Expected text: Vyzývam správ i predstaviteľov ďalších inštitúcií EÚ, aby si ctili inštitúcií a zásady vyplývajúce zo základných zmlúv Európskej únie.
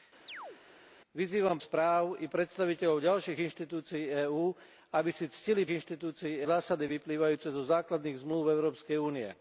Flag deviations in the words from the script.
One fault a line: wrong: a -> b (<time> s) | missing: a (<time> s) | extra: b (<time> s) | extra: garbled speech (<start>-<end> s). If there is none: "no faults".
no faults